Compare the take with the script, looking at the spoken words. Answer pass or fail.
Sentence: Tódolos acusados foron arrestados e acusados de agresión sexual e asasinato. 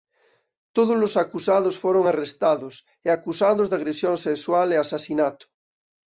pass